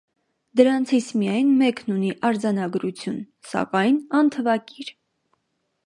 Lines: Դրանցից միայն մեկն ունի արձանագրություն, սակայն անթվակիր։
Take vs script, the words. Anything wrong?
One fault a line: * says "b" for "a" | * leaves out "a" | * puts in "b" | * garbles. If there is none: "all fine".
all fine